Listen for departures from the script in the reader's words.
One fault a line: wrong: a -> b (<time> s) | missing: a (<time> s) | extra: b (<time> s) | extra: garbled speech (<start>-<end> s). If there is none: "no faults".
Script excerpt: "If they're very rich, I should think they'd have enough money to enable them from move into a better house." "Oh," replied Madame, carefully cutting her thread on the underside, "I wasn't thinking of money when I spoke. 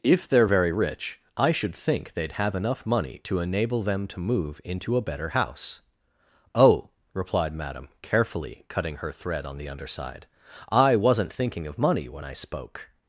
wrong: from -> to (4.1 s)